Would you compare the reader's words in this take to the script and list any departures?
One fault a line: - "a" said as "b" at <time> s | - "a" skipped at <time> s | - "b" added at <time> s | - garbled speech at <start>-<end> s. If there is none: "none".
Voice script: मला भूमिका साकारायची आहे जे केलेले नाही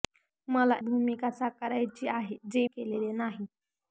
none